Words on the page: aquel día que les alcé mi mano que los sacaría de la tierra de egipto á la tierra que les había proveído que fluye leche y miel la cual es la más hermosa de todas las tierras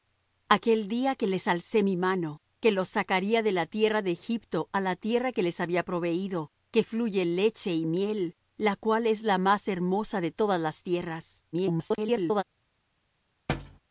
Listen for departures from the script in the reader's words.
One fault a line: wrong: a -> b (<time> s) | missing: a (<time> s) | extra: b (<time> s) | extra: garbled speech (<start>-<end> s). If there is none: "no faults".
extra: garbled speech (11.5-12.4 s)